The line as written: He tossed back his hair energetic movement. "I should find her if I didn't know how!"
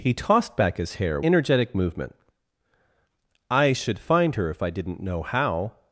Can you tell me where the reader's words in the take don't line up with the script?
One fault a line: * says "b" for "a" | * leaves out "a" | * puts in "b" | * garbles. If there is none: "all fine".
all fine